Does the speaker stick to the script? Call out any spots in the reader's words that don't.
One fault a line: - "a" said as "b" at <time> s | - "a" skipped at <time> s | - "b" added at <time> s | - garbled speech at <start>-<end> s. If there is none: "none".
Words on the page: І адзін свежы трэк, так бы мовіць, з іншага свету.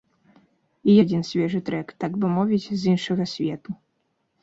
none